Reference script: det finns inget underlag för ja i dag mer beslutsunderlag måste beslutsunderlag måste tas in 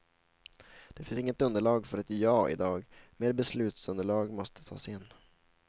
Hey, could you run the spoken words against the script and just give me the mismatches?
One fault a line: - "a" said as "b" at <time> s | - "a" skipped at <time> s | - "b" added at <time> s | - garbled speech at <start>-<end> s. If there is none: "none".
- "ett" added at 2.0 s
- "beslutsunderlag måste" skipped at 4.6 s